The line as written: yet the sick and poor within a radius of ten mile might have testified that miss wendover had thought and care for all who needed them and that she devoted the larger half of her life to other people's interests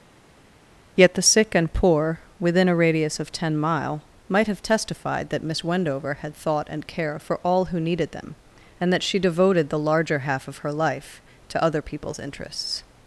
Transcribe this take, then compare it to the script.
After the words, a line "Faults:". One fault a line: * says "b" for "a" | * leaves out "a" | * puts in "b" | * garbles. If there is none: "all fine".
yet the sick and poor within a radius of ten mile might have testified that miss wendover had thought and care for all who needed them and that she devoted the larger half of her life to other people's interests
Faults:
all fine